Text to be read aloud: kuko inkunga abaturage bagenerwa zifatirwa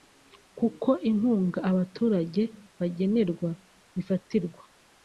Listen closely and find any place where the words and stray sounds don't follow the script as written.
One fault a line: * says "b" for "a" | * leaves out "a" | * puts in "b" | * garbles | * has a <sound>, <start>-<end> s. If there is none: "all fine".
all fine